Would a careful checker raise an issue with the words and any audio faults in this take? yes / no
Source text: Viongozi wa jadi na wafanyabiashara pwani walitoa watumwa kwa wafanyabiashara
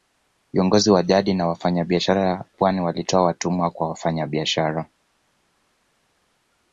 no